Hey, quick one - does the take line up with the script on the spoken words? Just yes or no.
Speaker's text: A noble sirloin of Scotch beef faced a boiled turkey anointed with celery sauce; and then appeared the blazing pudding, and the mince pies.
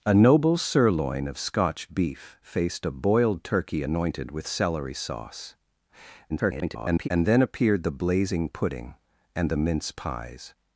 no